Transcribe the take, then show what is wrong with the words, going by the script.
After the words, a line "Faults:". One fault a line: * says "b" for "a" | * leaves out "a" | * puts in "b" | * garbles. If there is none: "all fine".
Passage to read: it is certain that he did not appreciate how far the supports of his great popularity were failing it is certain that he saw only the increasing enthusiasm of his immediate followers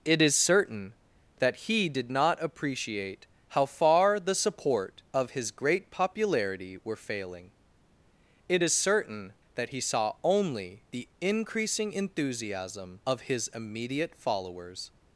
it is certain that he did not appreciate how far the support of his great popularity were failing it is certain that he saw only the increasing enthusiasm of his immediate followers
Faults:
* says "support" for "supports"